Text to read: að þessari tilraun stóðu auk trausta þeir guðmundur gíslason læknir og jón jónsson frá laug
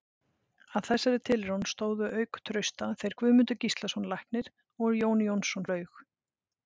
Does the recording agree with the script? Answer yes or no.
no